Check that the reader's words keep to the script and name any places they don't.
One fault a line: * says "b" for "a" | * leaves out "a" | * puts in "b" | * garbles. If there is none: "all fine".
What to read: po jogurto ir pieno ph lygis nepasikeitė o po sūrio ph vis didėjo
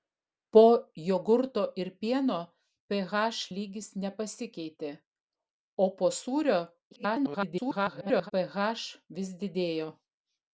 * garbles